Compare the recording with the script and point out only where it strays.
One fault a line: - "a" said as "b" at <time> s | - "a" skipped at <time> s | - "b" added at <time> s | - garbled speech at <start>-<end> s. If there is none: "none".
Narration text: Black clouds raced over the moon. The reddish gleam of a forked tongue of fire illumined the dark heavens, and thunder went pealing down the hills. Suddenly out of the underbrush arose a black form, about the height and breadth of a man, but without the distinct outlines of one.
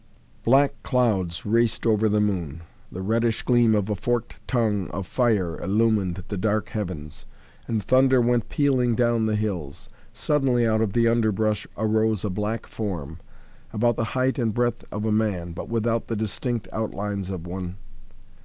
none